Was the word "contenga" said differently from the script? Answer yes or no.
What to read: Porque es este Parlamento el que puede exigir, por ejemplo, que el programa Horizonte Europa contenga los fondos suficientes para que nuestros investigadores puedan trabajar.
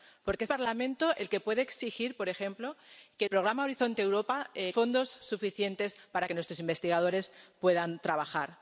yes